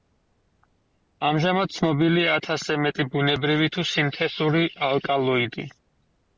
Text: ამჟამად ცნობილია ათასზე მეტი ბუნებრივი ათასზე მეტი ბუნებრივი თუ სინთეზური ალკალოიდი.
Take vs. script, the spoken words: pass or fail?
fail